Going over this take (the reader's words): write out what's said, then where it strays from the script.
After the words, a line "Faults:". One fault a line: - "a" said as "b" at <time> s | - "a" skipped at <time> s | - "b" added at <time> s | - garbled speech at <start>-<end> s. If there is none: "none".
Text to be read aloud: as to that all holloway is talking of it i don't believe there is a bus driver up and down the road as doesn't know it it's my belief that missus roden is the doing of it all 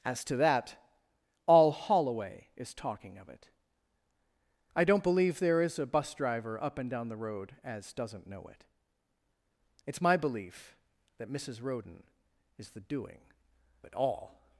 as to that all holloway is talking of it i don't believe there is a bus driver up and down the road as doesn't know it it's my belief that missus roden is the doing it all
Faults:
- "of" skipped at 13.3 s